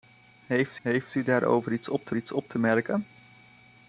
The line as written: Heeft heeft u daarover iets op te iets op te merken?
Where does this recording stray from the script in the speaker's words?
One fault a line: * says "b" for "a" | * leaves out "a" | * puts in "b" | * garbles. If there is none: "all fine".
all fine